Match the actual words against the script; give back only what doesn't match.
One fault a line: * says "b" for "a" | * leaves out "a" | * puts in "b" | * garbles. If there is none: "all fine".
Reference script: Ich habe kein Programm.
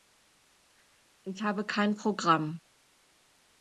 all fine